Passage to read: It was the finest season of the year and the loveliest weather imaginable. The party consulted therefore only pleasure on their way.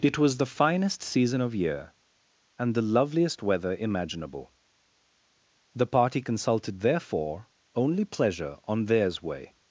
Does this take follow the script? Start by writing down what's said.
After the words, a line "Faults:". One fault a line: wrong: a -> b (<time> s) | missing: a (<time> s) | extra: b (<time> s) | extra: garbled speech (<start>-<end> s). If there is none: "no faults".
It was the finest season of year and the loveliest weather imaginable. The party consulted therefore only pleasure on theirs way.
Faults:
missing: the (1.5 s)
wrong: their -> theirs (8.8 s)